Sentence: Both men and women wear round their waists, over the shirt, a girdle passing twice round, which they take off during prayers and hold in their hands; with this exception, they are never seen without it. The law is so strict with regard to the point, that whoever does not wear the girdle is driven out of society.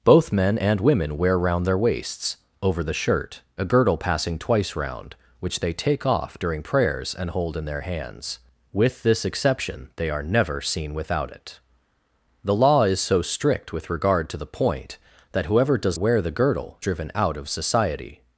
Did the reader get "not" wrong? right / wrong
wrong